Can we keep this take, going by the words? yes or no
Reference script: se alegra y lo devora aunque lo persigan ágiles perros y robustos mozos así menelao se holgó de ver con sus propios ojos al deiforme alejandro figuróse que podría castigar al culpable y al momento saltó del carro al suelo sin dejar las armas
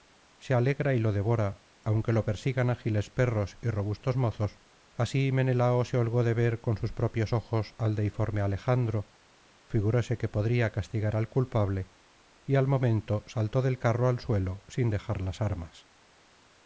yes